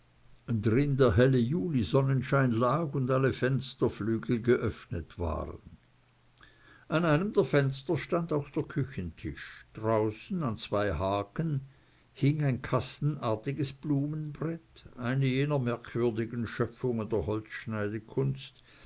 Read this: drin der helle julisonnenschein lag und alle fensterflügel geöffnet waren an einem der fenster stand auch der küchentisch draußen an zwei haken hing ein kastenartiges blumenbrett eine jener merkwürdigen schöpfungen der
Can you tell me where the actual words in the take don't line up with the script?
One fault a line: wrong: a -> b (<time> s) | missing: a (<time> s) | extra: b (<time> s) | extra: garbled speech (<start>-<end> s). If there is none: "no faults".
no faults